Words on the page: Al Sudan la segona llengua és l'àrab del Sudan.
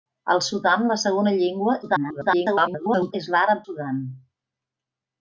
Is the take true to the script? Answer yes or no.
no